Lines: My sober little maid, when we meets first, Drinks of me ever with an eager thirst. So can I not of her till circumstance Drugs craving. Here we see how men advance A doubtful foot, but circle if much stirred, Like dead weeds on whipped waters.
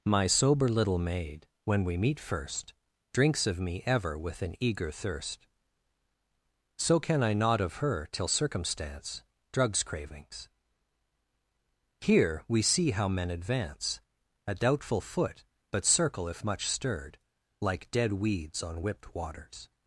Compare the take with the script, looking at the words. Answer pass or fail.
fail